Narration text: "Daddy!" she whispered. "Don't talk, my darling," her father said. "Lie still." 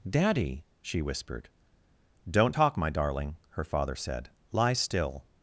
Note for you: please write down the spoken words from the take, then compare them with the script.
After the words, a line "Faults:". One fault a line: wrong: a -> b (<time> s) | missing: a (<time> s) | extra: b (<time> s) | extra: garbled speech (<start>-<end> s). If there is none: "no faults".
"Daddy!" she whispered. "Don't talk, my darling," her father said. "Lie still."
Faults:
no faults